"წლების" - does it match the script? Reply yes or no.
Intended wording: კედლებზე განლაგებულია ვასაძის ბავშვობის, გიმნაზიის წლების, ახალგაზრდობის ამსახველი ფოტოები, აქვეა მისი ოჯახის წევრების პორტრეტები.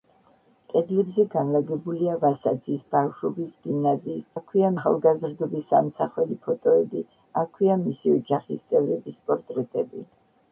no